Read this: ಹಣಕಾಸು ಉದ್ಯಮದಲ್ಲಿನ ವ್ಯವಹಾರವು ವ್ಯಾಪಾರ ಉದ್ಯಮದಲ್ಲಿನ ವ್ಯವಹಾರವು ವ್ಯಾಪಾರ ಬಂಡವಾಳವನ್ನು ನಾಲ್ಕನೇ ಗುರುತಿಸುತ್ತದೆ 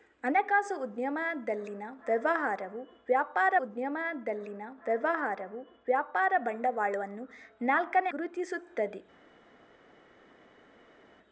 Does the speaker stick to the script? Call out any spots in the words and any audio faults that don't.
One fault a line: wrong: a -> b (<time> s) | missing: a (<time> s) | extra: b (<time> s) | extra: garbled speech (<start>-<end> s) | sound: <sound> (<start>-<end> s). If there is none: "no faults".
no faults